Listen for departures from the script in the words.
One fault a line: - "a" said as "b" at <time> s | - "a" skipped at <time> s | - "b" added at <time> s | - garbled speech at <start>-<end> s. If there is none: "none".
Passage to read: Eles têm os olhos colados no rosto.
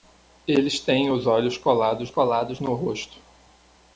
- "colados" added at 2.1 s